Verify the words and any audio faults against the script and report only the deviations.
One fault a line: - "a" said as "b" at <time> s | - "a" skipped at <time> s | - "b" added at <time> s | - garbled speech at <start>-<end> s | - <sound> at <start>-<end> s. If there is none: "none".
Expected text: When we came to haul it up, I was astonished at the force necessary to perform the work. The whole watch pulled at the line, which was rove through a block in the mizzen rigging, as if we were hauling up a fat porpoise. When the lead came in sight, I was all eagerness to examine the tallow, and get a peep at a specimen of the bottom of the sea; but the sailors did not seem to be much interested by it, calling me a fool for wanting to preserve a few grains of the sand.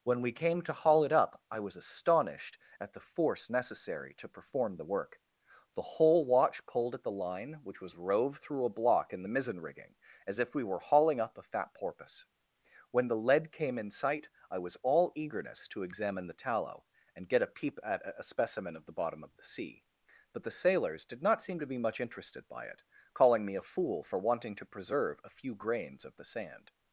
none